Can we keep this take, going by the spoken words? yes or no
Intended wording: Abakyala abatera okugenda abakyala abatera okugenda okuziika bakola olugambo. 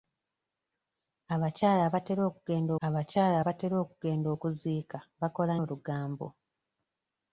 yes